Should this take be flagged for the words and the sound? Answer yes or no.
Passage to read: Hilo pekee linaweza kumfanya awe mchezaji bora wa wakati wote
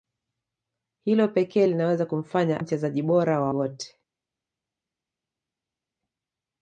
yes